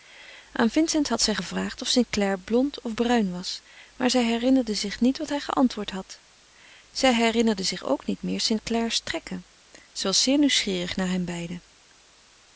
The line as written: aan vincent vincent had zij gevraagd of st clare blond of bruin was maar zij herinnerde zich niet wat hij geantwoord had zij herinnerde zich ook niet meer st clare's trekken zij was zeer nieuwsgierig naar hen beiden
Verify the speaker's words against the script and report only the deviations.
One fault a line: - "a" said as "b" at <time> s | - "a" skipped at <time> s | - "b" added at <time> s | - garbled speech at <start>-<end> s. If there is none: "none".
- "vincent" skipped at 1.1 s